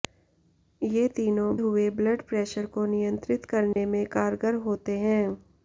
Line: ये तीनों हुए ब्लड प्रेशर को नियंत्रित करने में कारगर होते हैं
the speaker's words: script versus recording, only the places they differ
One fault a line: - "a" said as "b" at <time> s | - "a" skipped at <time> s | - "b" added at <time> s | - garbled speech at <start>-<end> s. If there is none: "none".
none